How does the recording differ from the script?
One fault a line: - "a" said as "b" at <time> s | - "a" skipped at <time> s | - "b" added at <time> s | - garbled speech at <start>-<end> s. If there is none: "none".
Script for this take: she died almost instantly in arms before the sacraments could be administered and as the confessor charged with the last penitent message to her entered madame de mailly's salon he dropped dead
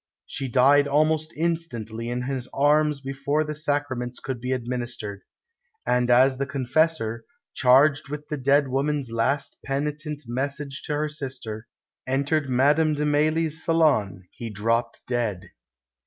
- "his" added at 2.2 s
- "dead woman's" added at 8.4 s
- "sister" added at 11.1 s